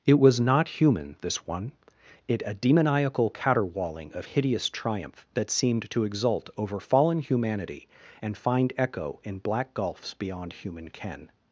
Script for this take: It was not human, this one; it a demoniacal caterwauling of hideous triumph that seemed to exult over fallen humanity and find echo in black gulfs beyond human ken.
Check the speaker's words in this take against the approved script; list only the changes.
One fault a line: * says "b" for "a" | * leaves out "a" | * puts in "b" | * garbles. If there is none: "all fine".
all fine